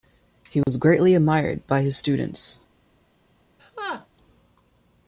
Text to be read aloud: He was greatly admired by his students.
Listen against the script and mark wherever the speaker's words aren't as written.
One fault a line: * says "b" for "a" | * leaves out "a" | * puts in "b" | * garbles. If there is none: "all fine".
all fine